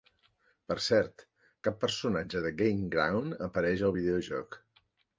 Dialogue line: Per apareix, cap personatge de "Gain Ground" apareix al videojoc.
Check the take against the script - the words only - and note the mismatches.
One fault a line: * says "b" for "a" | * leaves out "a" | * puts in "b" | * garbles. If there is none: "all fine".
* says "cert" for "apareix"